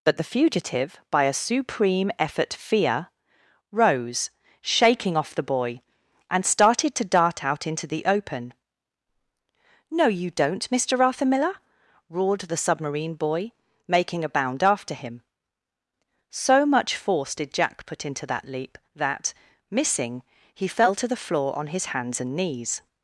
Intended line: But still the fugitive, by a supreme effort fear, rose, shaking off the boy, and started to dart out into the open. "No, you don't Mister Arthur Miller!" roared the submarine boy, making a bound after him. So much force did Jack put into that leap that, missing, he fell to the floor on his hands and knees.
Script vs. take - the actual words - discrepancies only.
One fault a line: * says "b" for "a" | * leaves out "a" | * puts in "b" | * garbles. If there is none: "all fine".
* leaves out "still"